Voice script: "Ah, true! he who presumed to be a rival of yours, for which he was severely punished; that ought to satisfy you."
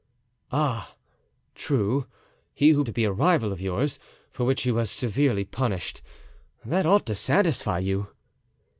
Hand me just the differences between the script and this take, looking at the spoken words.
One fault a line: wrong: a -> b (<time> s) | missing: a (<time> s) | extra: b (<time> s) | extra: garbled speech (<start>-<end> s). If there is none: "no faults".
missing: presumed (2.8 s)